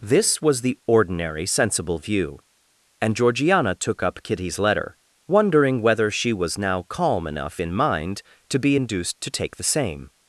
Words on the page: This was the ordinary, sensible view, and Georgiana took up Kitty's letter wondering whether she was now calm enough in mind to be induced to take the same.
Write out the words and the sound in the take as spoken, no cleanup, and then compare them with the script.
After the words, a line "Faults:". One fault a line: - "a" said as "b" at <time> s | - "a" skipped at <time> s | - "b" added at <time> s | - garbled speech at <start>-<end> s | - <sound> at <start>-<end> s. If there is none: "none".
This was the ordinary, sensible view, and Georgiana took up Kitty's letter wondering whether she was now calm enough in mind to be induced to take the same.
Faults:
none